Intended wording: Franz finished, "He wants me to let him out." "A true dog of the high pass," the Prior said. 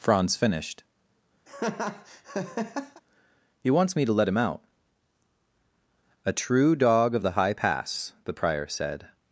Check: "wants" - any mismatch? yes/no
no